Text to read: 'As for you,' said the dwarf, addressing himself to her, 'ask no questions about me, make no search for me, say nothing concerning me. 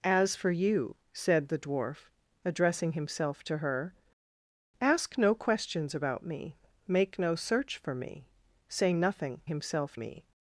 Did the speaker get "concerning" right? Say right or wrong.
wrong